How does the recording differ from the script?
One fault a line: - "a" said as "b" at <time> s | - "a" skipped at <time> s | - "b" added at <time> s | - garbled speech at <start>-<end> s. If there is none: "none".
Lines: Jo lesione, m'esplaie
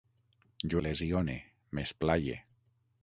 none